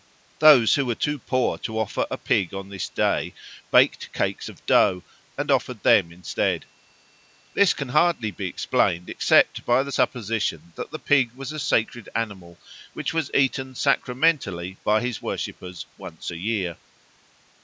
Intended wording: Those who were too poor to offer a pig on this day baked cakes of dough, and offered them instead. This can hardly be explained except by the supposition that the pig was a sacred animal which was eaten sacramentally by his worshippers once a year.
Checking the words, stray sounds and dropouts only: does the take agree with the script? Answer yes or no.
yes